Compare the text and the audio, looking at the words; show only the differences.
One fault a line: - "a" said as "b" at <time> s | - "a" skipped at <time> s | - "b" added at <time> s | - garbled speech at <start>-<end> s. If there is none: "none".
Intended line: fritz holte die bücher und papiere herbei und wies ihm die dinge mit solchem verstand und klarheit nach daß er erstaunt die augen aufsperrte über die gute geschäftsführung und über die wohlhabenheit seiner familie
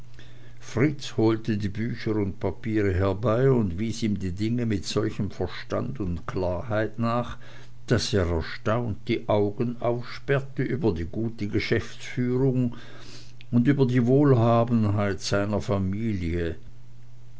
none